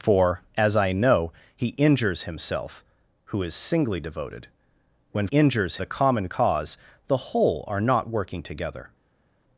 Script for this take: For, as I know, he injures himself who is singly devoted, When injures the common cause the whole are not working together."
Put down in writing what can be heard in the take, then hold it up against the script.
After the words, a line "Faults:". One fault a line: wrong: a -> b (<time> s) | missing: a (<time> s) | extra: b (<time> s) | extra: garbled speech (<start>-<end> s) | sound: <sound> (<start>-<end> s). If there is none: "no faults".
For, as I know, he injures himself who is singly devoted, When injures the common cause the whole are not working together."
Faults:
no faults